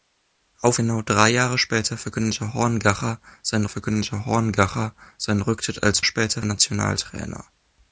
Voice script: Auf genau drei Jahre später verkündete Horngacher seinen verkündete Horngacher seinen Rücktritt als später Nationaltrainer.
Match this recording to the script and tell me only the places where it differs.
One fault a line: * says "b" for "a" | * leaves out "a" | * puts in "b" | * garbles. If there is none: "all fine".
all fine